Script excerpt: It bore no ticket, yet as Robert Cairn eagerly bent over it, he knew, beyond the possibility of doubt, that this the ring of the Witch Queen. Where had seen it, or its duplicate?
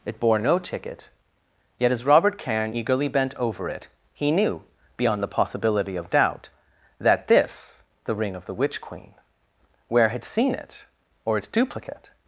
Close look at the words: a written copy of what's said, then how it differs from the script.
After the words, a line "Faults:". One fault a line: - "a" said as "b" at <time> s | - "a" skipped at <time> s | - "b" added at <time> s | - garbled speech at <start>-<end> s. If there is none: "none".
It bore no ticket, yet as Robert Cairn eagerly bent over it, he knew, beyond the possibility of doubt, that this the ring of the Witch Queen. Where had seen it, or its duplicate?
Faults:
none